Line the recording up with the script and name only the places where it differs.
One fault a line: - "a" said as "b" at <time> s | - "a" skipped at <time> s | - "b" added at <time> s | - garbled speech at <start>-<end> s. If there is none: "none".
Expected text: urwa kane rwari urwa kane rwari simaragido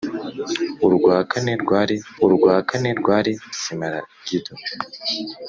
none